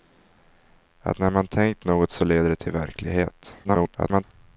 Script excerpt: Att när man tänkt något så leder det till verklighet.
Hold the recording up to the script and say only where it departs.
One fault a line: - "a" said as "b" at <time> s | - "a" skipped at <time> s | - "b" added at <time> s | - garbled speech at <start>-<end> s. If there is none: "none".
- garbled speech at 3.6-4.2 s